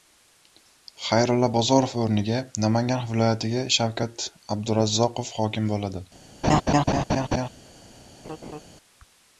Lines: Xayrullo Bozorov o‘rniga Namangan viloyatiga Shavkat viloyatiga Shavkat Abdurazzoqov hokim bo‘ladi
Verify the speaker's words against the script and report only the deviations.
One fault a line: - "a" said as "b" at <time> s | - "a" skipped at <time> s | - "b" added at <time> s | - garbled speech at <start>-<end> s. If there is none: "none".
- "viloyatiga Shavkat" skipped at 4.3 s